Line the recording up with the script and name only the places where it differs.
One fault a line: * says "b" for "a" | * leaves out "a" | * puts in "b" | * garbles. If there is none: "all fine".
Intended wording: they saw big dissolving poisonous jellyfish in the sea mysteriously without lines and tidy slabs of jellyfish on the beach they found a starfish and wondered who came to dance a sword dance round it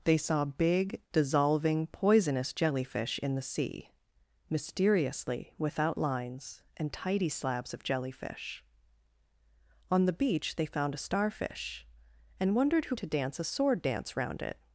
* leaves out "came"